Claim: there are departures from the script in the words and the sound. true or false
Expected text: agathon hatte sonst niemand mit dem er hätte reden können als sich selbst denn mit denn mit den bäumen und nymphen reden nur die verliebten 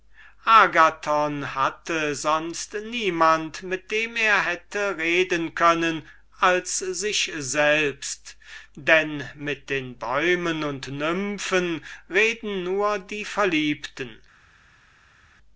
true